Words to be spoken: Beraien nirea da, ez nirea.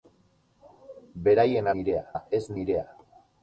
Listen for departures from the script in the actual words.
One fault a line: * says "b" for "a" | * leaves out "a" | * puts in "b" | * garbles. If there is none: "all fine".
all fine